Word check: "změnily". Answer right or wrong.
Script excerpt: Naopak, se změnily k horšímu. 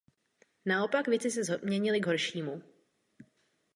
right